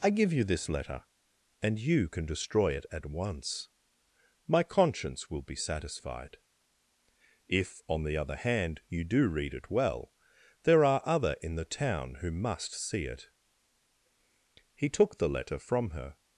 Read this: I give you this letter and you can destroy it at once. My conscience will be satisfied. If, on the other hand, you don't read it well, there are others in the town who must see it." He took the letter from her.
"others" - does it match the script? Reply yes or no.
no